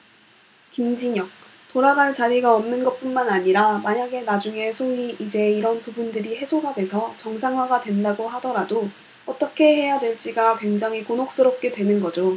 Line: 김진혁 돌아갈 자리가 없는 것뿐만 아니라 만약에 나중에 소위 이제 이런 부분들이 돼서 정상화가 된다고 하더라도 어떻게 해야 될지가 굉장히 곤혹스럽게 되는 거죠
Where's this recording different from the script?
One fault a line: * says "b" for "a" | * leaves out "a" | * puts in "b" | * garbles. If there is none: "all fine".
* puts in "해소가"